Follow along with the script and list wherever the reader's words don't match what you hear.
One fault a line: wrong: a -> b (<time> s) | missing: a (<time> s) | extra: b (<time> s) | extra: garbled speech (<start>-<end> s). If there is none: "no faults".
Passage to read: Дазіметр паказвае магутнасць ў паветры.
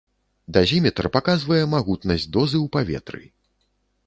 extra: дозы (2.4 s)